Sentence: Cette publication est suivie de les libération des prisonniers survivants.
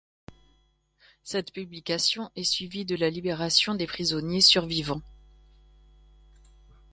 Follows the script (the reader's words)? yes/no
no